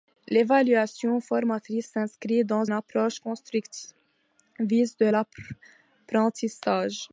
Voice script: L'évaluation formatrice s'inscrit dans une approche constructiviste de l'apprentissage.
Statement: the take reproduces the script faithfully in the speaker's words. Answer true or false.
false